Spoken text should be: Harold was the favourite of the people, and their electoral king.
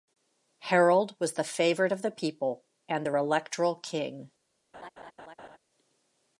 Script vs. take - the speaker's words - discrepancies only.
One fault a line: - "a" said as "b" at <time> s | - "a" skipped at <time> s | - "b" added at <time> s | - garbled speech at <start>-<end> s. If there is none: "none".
none